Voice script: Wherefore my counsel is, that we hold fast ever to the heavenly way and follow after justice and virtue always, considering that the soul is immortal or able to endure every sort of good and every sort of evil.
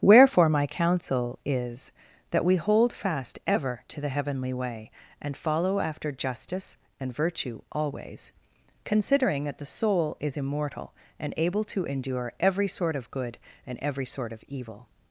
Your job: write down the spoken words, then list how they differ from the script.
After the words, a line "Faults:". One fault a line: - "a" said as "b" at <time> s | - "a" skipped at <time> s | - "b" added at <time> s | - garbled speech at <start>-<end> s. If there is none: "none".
Wherefore my counsel is, that we hold fast ever to the heavenly way and follow after justice and virtue always, considering that the soul is immortal and able to endure every sort of good and every sort of evil.
Faults:
- "or" said as "and" at 11.2 s